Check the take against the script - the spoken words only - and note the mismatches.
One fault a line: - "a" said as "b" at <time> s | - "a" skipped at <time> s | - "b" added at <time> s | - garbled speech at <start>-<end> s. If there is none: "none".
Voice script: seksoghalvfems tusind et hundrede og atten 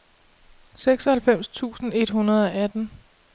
none